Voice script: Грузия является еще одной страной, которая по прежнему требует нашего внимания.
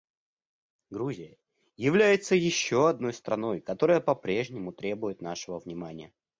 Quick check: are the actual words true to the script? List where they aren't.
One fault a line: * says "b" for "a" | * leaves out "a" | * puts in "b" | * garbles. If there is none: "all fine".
all fine